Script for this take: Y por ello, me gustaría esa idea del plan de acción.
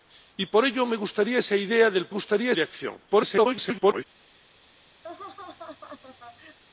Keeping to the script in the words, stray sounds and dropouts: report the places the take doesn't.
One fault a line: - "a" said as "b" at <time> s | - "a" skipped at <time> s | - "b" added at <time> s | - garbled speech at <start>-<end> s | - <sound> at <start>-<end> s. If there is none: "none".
- "plan" said as "gustaría" at 2.1 s
- garbled speech at 3.1-4.1 s
- laugh at 5.0-6.6 s